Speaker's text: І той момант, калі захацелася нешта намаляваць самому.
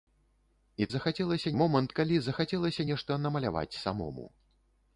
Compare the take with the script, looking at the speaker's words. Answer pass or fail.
fail